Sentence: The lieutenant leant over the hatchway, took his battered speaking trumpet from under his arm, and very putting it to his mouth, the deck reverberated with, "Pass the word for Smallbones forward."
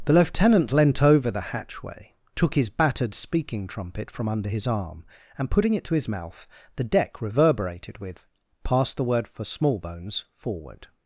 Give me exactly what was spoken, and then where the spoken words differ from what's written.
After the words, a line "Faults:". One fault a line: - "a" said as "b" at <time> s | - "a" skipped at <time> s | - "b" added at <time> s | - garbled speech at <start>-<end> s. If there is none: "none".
The lieutenant leant over the hatchway, took his battered speaking trumpet from under his arm, and putting it to his mouth, the deck reverberated with, "Pass the word for Smallbones forward."
Faults:
- "very" skipped at 5.5 s